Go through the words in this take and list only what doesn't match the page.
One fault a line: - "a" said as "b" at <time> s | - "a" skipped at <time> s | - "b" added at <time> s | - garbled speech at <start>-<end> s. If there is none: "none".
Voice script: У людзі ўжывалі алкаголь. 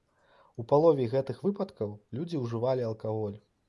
- "палове гэтых выпадкаў" added at 0.7 s